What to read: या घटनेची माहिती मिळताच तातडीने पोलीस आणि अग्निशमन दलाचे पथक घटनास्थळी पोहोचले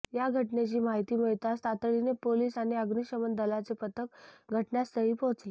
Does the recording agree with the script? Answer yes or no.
yes